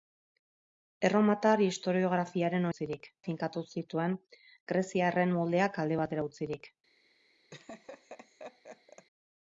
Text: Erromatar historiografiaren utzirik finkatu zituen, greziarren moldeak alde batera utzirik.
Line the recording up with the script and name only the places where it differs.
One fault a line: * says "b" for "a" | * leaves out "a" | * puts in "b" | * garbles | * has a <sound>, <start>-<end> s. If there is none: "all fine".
* has a laugh, 7.5-9.1 s